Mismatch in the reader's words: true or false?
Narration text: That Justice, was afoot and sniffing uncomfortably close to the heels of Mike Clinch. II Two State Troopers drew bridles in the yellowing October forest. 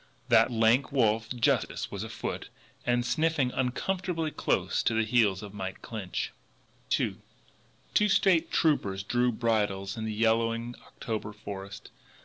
true